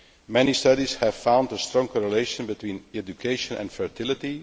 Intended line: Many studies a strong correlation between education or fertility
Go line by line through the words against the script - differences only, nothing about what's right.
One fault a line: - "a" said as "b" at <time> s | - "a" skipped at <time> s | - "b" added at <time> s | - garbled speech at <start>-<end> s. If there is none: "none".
- "have found" added at 1.0 s
- "or" said as "and" at 3.5 s